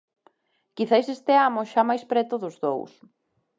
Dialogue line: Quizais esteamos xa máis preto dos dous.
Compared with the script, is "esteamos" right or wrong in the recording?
right